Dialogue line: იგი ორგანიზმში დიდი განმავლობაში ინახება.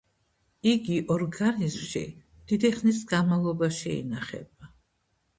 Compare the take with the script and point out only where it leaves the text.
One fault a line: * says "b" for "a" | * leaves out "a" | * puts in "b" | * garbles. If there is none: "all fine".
* puts in "ხნის"